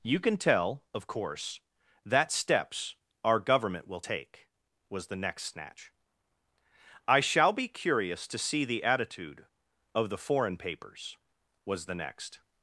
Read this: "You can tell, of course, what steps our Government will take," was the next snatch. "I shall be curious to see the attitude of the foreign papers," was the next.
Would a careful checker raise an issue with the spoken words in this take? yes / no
yes